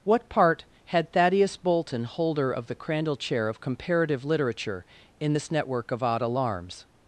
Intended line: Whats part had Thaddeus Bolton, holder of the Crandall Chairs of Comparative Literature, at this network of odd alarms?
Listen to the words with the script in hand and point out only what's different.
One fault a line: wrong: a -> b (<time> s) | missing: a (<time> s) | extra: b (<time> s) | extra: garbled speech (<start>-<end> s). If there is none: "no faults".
wrong: Whats -> What (0.0 s)
wrong: Chairs -> Chair (3.2 s)
wrong: at -> in (5.2 s)